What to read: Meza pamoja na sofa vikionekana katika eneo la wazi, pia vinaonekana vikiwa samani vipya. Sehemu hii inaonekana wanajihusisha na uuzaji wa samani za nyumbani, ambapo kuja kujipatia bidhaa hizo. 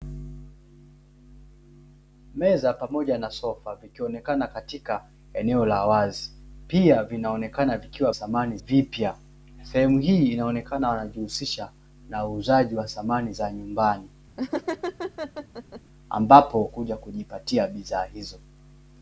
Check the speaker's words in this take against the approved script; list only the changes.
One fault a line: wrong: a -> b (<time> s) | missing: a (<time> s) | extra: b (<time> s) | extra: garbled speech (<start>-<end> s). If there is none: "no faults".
no faults